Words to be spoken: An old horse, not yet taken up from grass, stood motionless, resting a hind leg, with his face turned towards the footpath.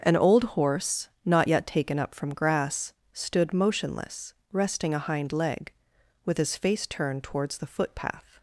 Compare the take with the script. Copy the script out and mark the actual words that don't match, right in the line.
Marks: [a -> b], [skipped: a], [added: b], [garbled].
An old horse, not yet taken up from grass, stood motionless, resting a hind leg, with his face turned towards the footpath.